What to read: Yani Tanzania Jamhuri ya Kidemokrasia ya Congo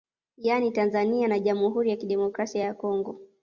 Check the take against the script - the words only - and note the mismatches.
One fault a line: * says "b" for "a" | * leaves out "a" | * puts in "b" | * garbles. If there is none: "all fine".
* puts in "na"